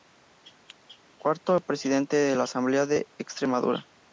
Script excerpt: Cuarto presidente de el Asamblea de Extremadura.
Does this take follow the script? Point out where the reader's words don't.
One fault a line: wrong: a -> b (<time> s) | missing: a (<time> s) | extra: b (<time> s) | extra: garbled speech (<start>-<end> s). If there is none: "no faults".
wrong: el -> la (2.4 s)